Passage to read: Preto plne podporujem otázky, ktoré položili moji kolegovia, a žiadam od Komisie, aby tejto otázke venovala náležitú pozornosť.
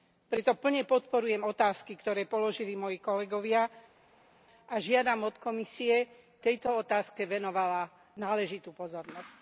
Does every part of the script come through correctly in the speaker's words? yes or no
no